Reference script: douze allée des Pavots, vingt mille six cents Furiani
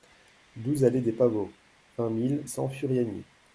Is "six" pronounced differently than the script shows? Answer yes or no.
yes